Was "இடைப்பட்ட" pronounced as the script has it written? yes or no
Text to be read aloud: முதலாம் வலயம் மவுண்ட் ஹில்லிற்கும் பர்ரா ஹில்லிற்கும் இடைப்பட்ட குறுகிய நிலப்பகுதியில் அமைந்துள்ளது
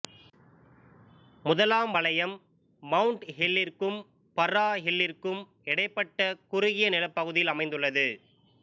yes